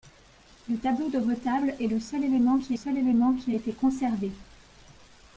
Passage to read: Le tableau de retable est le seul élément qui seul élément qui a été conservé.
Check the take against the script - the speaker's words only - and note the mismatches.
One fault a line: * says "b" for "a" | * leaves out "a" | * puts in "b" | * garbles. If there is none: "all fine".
all fine